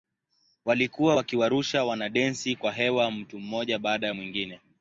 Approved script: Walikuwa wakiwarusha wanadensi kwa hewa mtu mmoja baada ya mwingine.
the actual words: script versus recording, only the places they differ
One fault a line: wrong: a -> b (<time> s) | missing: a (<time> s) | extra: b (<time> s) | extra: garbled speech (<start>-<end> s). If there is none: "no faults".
no faults